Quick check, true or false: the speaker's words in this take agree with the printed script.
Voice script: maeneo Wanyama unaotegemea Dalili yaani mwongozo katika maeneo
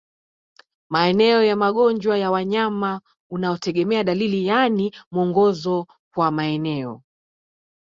false